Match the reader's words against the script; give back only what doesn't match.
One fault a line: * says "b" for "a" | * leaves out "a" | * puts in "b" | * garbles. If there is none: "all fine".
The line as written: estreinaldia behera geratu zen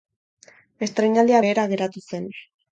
all fine